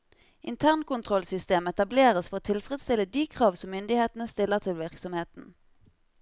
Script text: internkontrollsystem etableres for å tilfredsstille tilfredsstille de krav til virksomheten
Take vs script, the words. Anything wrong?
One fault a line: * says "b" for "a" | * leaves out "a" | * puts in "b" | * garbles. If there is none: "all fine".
* leaves out "tilfredsstille"
* puts in "som myndighetene stiller"